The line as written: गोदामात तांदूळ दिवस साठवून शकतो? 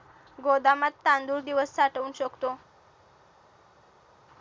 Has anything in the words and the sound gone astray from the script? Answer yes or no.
no